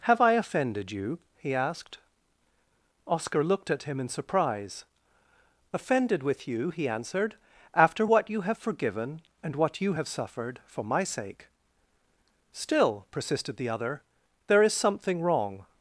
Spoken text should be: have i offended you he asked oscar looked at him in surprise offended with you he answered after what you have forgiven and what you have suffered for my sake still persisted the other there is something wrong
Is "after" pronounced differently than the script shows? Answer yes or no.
no